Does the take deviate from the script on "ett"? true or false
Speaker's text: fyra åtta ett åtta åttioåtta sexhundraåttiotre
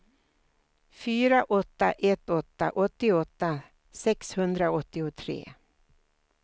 false